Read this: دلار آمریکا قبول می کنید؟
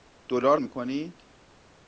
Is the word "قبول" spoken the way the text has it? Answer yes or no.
no